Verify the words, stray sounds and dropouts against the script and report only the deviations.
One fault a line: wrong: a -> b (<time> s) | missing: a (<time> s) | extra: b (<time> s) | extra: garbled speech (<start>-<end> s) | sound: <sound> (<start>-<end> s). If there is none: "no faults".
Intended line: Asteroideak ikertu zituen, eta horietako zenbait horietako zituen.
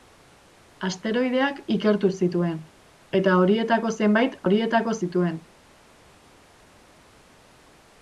no faults